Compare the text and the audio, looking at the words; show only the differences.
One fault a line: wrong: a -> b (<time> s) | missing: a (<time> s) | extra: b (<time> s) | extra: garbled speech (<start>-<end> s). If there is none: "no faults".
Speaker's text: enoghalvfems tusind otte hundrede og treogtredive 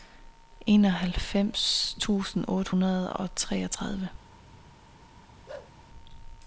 no faults